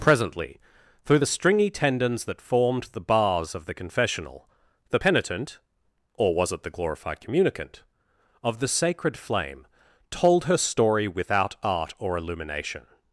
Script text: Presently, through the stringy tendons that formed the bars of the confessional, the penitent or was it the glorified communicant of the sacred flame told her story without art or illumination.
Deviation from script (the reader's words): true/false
false